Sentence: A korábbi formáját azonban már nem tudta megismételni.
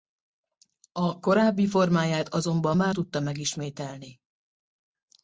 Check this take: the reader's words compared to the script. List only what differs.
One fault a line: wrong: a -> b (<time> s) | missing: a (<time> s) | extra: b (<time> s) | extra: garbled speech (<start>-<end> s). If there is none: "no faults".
missing: nem (2.9 s)